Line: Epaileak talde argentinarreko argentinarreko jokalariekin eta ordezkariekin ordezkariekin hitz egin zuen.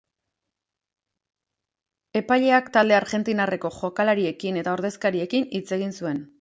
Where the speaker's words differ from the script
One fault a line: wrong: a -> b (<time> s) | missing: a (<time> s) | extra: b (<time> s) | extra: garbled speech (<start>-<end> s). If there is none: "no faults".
missing: argentinarreko (3.7 s)
missing: ordezkariekin (5.5 s)